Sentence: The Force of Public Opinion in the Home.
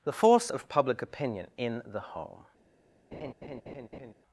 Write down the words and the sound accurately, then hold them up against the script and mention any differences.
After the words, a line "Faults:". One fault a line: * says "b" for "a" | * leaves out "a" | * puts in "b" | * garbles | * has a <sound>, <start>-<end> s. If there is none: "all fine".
The Force of Public Opinion in the Home.
Faults:
* has a laugh, 3.1-4.1 s